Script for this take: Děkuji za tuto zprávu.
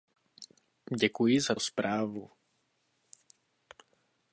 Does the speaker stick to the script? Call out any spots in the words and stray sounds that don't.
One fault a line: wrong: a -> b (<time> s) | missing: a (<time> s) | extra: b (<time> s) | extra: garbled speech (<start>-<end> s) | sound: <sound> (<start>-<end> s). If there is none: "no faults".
missing: tuto (1.6 s)